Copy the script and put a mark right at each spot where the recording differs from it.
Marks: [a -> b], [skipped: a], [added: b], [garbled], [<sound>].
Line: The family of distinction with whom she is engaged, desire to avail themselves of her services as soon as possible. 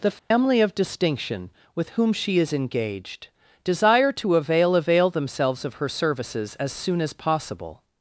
The family [dropout] of distinction with whom she is engaged, desire to avail [added: avail] themselves of her services as soon as possible.